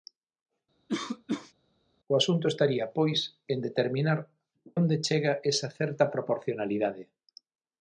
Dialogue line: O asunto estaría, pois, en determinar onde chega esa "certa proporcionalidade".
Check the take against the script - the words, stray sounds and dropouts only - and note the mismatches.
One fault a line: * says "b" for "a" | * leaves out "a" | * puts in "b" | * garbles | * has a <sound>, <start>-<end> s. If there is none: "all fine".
* has a cough, 0.9-1.5 s